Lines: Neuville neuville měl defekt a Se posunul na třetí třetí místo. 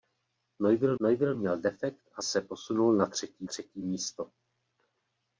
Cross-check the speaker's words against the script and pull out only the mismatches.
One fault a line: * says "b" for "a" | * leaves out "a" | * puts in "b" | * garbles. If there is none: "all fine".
all fine